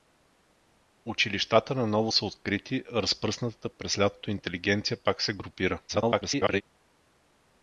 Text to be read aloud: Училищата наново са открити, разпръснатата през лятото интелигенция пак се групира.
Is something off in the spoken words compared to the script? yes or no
yes